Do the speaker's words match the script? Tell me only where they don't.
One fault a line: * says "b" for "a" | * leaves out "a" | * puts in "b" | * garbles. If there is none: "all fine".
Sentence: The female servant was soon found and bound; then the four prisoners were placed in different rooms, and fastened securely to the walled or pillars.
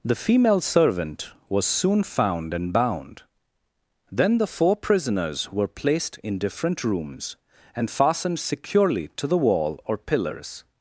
* says "wall" for "walled"